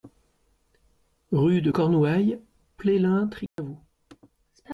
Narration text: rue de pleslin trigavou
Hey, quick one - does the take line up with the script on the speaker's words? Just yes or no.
no